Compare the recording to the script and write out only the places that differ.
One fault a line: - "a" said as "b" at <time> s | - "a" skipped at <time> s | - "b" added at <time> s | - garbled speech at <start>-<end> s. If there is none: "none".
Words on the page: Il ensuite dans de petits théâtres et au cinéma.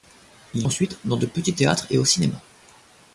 none